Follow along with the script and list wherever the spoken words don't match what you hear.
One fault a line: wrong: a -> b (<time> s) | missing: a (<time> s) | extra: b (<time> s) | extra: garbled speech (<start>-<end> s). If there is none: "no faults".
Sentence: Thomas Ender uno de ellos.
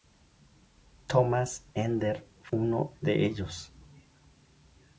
no faults